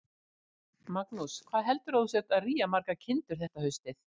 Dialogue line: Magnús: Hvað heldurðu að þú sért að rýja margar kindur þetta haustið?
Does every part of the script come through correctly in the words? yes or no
yes